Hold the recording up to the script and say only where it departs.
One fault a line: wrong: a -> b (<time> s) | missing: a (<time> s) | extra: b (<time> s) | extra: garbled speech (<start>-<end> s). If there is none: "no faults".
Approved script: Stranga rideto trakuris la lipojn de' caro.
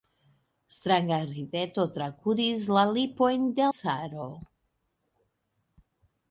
no faults